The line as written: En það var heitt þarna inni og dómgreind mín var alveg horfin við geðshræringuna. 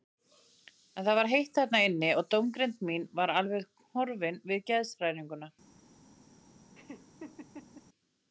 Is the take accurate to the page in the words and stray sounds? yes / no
no